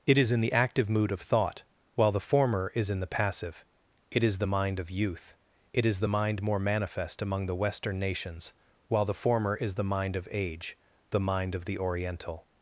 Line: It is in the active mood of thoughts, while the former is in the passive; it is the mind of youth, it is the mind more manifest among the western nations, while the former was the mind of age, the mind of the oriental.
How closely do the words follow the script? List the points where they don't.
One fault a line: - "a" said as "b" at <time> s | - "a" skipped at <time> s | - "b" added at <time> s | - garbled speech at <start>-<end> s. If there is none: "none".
- "thoughts" said as "thought" at 1.2 s
- "was" said as "is" at 9.6 s